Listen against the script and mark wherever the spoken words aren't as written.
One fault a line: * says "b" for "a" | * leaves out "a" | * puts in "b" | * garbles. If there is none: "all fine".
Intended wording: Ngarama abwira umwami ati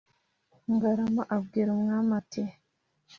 all fine